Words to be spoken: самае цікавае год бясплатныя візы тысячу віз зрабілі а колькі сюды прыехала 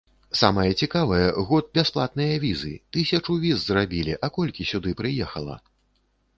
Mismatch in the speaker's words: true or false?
false